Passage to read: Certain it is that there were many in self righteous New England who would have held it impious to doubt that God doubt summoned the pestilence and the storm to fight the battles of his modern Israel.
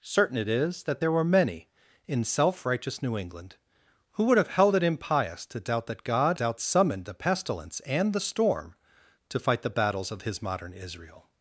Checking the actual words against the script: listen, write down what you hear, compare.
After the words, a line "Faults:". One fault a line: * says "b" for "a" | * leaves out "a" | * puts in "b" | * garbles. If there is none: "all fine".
Certain it is that there were many in self righteous New England who would have held it impious to doubt that God doubt summoned the pestilence and the storm to fight the battles of his modern Israel.
Faults:
all fine